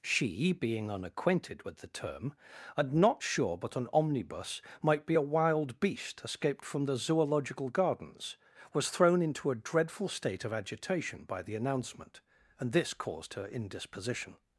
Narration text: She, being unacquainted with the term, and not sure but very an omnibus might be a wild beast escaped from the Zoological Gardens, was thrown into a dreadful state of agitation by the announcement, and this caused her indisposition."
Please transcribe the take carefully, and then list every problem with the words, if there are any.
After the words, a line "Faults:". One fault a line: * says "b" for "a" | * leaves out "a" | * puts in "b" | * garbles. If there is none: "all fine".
She, being unacquainted with the term, and not sure but an omnibus might be a wild beast escaped from the Zoological Gardens, was thrown into a dreadful state of agitation by the announcement, and this caused her indisposition."
Faults:
* leaves out "very"